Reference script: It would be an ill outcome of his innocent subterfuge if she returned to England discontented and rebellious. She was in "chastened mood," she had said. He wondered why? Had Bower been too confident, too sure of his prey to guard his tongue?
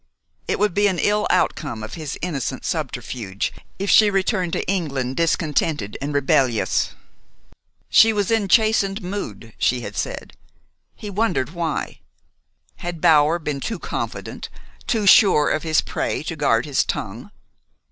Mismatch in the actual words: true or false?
false